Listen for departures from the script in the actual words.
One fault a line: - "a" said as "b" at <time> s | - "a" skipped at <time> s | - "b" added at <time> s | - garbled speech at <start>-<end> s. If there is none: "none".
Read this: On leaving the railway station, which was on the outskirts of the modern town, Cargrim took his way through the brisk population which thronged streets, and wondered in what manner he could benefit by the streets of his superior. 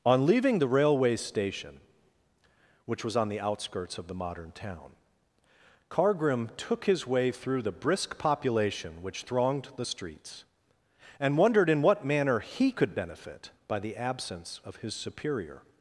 - "the" added at 9.7 s
- "streets" said as "absence" at 14.0 s